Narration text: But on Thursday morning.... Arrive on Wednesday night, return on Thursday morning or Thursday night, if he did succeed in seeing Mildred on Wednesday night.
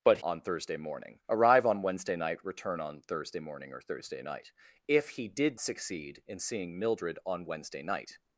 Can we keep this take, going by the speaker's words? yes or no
yes